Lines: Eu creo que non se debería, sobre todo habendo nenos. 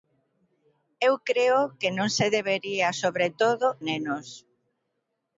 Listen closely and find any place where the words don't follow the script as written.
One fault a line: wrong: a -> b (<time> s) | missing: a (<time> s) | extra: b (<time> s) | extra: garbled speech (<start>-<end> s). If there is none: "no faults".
missing: habendo (3.7 s)